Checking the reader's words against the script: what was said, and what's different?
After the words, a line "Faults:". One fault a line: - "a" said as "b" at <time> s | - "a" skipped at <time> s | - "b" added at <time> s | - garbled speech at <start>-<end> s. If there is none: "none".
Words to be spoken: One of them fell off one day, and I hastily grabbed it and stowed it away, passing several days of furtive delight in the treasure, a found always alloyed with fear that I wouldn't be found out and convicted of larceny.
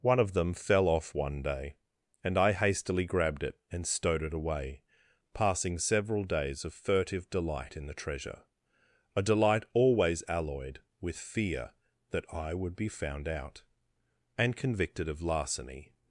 One of them fell off one day, and I hastily grabbed it and stowed it away, passing several days of furtive delight in the treasure, a delight always alloyed with fear that I would be found out and convicted of larceny.
Faults:
- "found" said as "delight" at 9.2 s
- "wouldn't" said as "would" at 12.5 s